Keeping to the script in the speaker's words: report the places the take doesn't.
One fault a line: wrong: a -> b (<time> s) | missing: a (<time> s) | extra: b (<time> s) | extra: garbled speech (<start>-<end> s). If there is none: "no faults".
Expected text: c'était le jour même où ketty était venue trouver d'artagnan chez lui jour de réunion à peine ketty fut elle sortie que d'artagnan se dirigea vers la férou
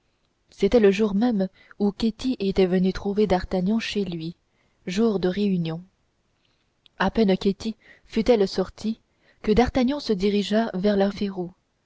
no faults